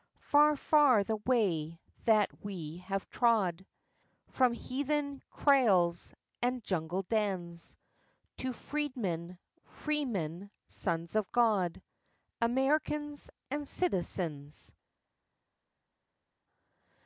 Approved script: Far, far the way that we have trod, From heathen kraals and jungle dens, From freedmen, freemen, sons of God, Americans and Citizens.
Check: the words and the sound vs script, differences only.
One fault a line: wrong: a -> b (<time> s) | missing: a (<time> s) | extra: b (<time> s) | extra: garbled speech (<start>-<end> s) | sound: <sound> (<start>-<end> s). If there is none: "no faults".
wrong: From -> To (8.4 s)